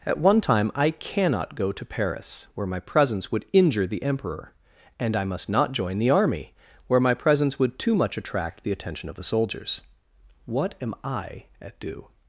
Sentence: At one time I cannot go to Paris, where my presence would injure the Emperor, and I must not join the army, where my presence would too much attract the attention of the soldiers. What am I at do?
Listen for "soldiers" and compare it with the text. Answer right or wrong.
right